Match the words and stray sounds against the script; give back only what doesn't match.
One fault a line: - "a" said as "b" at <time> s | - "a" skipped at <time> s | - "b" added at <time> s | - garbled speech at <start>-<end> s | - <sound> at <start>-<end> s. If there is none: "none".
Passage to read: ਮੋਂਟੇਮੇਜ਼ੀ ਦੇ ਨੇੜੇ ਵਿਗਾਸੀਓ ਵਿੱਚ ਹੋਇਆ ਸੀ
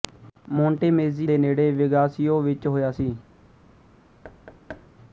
- thud at 4.2-4.9 s